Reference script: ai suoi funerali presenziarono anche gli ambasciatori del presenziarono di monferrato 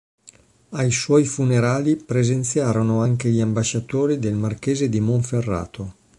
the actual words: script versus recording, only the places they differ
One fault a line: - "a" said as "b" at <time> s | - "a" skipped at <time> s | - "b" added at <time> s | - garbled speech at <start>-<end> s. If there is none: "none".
- "presenziarono" said as "marchese" at 4.3 s